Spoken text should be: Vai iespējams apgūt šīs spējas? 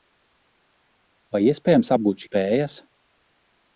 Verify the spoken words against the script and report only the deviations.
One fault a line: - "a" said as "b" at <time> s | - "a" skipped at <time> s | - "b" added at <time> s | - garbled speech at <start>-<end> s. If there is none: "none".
- "šīs" skipped at 2.2 s